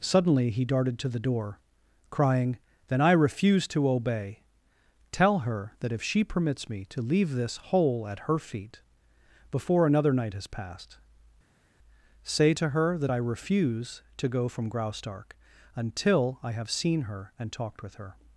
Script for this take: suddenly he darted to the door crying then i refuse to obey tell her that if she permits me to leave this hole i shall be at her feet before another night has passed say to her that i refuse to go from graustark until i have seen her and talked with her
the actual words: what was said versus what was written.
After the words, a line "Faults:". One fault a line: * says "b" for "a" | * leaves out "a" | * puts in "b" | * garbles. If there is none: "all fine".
suddenly he darted to the door crying then i refuse to obey tell her that if she permits me to leave this hole at her feet before another night has passed say to her that i refuse to go from graustark until i have seen her and talked with her
Faults:
* leaves out "i shall be"